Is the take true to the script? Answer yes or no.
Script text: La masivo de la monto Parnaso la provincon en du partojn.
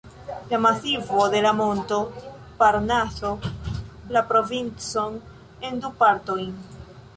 yes